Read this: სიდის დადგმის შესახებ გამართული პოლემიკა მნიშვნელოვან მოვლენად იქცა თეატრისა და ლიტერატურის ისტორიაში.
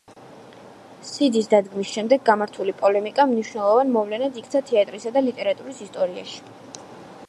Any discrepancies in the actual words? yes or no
yes